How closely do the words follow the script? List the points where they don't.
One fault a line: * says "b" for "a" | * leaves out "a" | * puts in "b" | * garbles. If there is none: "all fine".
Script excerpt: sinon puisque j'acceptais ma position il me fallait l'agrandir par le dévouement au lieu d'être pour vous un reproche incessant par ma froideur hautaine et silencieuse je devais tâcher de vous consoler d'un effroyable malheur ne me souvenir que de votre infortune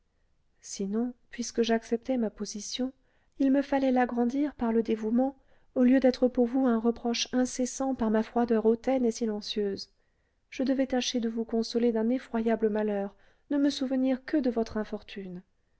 all fine